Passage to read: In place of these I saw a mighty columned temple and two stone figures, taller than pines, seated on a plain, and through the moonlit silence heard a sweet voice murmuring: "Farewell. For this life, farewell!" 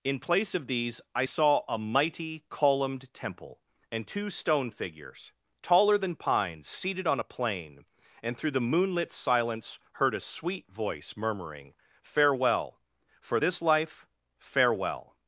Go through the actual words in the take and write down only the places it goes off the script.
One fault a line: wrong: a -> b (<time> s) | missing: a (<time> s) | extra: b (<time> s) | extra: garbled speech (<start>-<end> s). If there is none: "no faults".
no faults